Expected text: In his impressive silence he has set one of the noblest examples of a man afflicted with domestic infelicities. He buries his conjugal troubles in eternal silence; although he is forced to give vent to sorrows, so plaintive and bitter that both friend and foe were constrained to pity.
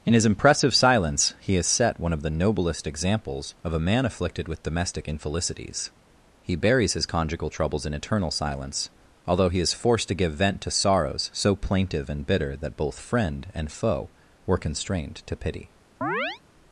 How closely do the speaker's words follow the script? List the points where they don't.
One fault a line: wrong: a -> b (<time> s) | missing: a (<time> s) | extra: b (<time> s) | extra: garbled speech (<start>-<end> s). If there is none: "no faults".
no faults